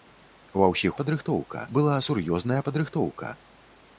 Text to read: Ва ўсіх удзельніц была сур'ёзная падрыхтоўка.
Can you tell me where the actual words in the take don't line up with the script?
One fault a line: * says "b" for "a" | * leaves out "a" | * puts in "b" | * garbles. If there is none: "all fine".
* says "падрыхтоўка" for "удзельніц"